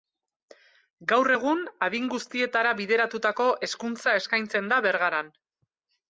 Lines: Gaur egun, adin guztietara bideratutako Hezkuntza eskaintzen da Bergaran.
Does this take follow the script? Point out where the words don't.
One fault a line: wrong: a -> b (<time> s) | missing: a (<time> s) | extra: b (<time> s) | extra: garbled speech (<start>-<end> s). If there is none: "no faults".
no faults